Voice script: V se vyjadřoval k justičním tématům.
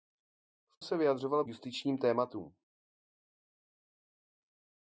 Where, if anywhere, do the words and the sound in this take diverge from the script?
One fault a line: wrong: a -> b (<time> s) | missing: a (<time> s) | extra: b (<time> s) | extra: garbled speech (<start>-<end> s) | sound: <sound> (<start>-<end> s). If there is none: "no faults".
no faults